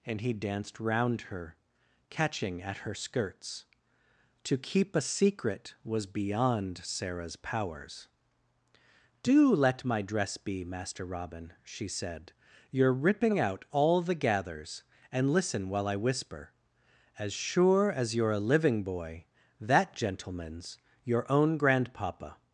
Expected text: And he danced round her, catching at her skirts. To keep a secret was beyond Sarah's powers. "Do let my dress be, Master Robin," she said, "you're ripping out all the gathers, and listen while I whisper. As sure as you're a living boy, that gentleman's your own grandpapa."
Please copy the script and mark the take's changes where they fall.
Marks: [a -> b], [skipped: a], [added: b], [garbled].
And he danced round her, catching at her skirts. To keep a secret was beyond Sarah's powers. "Do let my dress be, Master Robin," she said, "you're ripping out all the gathers, and listen while I whisper. As sure as you're a living boy, that gentleman's your own grandpapa."